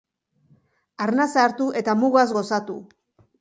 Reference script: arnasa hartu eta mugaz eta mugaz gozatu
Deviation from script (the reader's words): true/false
true